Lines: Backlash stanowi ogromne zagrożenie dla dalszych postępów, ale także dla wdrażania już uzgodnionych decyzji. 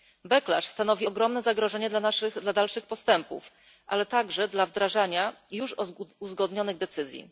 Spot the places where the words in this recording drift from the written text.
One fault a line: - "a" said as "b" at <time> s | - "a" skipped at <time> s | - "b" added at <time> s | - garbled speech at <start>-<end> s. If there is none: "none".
none